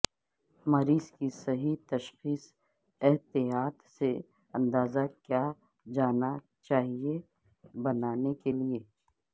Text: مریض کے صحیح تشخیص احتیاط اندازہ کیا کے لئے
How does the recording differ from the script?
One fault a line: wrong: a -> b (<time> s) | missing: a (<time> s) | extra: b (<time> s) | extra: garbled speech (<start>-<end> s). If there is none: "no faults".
wrong: کے -> کی (1.1 s)
extra: سے (4.0 s)
extra: جانا چاہئے بنانے (5.8 s)